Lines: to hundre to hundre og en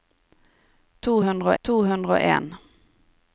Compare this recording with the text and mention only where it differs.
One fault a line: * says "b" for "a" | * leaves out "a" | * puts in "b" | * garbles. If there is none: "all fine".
all fine